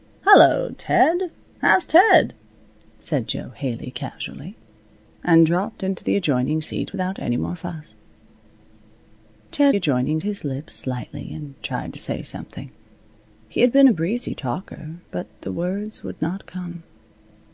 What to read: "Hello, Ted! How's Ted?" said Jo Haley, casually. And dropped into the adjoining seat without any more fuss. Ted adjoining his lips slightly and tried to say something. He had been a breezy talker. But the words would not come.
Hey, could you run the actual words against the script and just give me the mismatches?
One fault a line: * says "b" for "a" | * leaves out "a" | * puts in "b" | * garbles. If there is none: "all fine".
all fine